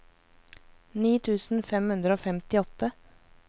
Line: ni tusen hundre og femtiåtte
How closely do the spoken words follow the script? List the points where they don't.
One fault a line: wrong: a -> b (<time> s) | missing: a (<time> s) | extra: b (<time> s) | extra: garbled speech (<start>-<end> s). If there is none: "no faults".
extra: fem (1.7 s)